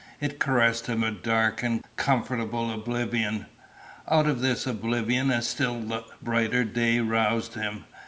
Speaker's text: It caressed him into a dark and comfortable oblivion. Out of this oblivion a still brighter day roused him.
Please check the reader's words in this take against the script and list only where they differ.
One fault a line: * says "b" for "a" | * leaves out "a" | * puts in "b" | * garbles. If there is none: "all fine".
* leaves out "into"